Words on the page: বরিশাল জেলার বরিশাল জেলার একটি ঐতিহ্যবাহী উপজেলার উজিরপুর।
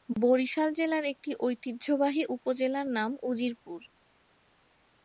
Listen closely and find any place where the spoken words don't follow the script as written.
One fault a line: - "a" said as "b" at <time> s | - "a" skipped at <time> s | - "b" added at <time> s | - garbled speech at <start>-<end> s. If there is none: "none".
- "বরিশাল জেলার" skipped at 1.1 s
- "নাম" added at 2.9 s